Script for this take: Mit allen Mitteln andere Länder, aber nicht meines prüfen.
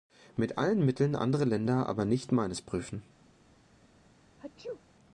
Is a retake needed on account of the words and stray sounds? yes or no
yes